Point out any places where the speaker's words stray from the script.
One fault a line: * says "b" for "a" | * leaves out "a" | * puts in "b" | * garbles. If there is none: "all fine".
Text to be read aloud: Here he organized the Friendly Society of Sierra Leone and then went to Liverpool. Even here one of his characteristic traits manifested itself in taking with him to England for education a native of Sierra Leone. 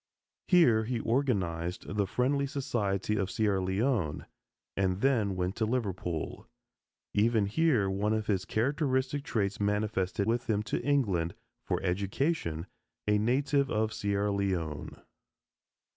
* leaves out "itself in taking"